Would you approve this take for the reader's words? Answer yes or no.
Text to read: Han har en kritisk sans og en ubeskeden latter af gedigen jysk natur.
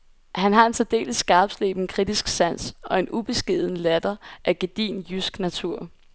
no